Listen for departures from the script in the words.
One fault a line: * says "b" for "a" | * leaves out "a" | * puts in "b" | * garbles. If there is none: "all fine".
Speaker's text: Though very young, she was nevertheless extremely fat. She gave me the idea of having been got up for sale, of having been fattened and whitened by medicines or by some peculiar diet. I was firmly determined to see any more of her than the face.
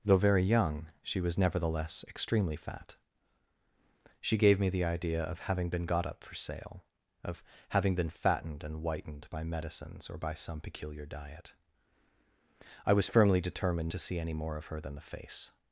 all fine